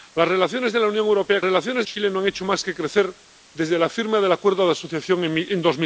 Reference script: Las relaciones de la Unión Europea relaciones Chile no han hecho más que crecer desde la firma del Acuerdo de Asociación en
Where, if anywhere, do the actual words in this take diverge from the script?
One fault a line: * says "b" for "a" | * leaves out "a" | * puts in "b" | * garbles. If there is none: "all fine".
all fine